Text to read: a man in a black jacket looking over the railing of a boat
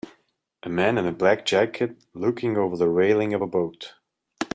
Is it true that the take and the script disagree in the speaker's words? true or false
false